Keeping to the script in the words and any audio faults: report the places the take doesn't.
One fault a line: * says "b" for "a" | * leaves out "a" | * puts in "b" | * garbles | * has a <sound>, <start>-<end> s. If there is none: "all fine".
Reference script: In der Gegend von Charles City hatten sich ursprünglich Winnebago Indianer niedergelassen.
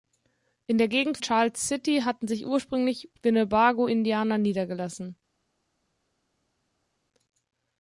* leaves out "von"